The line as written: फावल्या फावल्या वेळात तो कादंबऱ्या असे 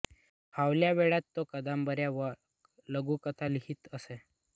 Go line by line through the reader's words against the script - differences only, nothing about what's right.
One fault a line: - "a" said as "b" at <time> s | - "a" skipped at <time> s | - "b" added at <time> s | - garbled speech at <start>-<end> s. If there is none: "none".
- "फावल्या" skipped at 0.9 s
- "व लघुकथा लिहीत" added at 2.1 s